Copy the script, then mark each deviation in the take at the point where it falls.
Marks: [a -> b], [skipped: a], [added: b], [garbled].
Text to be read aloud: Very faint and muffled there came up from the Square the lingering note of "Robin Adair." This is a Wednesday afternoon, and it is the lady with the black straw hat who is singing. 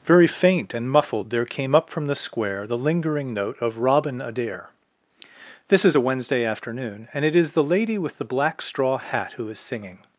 Very faint and muffled there came up from the Square the lingering note of "Robin Adair." This is a Wednesday afternoon, and it is the lady with the black straw hat who is singing.